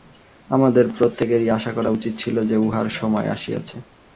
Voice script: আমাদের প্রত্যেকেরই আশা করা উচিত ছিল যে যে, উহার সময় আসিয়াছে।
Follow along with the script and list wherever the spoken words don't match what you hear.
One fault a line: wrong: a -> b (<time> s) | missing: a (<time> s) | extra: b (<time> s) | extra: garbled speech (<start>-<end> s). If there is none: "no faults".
missing: যে (2.6 s)